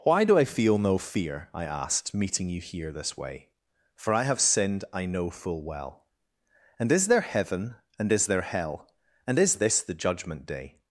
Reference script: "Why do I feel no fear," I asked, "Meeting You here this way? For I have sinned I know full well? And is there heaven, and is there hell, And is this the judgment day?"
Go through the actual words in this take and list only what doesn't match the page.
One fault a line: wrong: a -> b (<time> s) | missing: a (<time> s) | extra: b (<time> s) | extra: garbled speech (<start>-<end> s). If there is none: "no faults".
no faults